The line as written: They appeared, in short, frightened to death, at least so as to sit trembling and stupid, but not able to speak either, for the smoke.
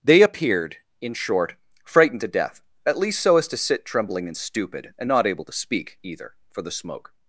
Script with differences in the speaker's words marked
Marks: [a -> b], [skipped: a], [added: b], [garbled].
They appeared, in short, frightened to death, at least so as to sit trembling and stupid, [but -> and] not able to speak either, for the smoke.